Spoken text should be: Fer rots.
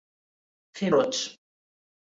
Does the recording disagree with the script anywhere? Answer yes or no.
no